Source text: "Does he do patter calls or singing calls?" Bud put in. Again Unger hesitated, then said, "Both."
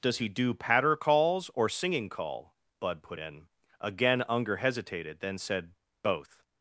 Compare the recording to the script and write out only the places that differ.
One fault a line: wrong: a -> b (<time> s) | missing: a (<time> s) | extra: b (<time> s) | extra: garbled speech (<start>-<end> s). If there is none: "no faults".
wrong: calls -> call (2.1 s)